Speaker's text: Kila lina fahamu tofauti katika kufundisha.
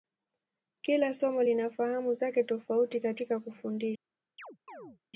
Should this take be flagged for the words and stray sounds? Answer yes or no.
yes